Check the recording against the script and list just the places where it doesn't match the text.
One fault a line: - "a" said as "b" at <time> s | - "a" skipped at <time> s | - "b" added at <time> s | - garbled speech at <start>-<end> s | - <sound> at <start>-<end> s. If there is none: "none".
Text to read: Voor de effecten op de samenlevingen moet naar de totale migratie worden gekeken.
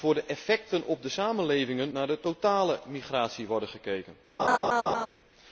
- "moet" skipped at 1.9 s
- laugh at 4.4-5.1 s